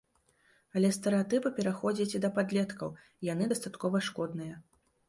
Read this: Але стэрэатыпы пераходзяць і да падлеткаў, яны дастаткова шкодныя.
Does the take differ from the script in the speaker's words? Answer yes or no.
yes